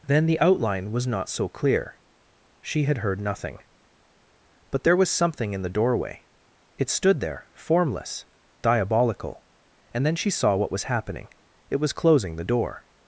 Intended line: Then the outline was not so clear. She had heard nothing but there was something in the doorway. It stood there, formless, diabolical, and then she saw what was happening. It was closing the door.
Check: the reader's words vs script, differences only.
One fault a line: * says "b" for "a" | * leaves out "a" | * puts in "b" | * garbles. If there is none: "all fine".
all fine